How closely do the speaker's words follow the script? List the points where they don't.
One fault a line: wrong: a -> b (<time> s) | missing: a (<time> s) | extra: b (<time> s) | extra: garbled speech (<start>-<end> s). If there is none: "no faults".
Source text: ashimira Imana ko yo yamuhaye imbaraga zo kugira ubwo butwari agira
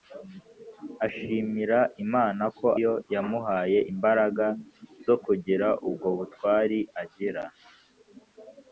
no faults